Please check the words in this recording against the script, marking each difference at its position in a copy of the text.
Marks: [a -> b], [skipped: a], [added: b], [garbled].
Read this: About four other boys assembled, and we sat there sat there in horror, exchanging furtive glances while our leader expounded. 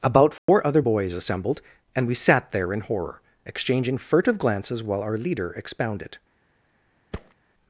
About four other boys assembled, and we sat there [skipped: sat there] in horror, exchanging furtive glances while our leader expounded.